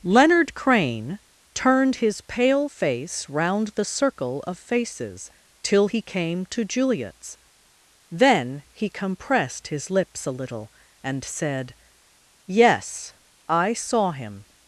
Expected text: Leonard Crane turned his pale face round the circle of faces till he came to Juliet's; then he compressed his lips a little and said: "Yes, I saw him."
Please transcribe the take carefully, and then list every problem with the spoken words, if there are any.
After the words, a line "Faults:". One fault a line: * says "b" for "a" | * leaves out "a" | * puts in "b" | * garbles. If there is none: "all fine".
Leonard Crane turned his pale face round the circle of faces till he came to Juliet's; then he compressed his lips a little and said: "Yes, I saw him."
Faults:
all fine